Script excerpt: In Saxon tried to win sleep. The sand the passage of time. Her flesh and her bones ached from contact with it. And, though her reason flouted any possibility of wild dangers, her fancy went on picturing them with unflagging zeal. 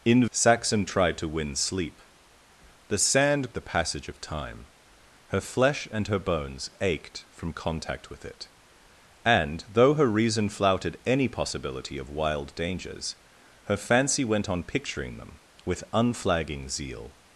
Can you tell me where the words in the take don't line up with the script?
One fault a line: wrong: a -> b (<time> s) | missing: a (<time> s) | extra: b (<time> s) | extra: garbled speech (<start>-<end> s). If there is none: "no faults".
no faults